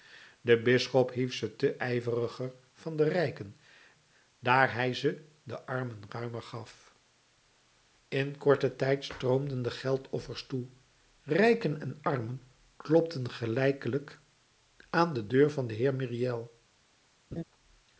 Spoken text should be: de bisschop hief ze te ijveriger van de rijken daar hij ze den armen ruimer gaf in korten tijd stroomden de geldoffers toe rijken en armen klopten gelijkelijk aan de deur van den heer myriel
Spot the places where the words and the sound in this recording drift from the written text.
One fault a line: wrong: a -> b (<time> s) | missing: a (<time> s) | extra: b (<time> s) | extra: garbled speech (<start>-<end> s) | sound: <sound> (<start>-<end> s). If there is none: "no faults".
sound: laugh (17.3-17.4 s)